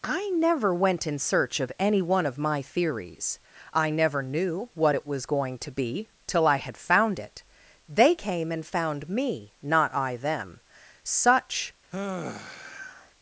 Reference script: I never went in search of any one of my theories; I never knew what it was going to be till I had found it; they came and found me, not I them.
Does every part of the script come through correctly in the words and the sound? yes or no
no